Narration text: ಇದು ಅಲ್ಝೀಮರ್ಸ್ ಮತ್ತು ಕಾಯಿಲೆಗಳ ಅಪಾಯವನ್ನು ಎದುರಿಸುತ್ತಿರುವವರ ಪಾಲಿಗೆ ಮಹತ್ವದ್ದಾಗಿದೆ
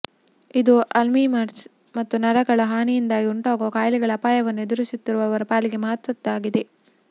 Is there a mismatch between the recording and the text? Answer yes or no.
yes